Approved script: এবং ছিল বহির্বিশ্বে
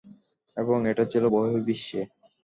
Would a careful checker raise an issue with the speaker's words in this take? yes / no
yes